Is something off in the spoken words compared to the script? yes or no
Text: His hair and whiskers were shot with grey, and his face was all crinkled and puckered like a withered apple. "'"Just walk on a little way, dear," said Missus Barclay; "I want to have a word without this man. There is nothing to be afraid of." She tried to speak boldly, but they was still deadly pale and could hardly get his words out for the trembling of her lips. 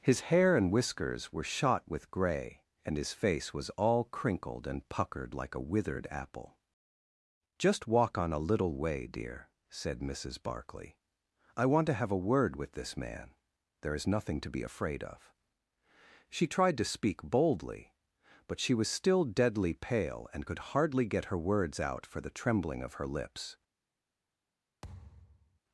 yes